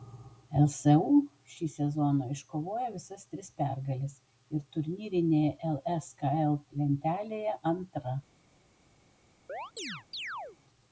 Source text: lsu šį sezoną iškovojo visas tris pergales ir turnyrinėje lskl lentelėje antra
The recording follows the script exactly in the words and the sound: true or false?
false